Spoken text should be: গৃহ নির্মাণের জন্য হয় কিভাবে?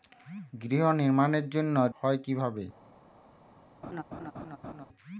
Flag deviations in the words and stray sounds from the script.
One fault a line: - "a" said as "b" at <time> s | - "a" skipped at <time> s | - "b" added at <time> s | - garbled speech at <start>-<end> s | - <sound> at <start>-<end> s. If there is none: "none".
- laugh at 3.8-4.9 s